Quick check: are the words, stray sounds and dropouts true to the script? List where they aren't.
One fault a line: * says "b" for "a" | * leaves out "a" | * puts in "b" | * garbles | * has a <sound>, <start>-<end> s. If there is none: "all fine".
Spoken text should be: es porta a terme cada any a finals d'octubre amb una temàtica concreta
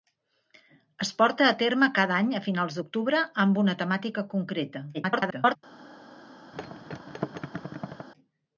* garbles
* has a thud, 6.5-8.1 s